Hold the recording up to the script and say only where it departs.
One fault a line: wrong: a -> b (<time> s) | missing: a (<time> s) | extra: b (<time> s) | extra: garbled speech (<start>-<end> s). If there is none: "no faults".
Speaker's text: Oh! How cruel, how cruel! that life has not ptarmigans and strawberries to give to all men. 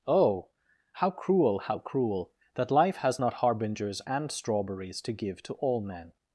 wrong: ptarmigans -> harbingers (3.4 s)